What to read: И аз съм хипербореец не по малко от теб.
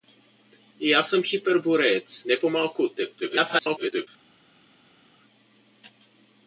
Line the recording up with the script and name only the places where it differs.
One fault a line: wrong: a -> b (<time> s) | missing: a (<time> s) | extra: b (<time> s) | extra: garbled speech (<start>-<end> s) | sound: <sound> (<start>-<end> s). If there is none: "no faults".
extra: garbled speech (3.2-4.1 s)